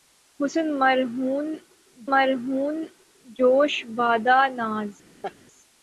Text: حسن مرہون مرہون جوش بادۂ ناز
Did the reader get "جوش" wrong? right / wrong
right